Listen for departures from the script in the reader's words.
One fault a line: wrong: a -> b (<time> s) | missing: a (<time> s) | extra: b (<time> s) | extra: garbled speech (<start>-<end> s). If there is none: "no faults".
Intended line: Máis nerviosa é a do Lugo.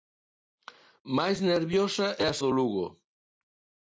no faults